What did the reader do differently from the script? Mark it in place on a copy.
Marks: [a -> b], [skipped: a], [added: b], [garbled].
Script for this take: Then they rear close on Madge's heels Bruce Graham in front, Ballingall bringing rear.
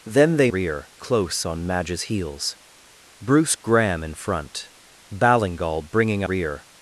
Then they rear close on Madge's heels Bruce Graham in front, Ballingall bringing rear.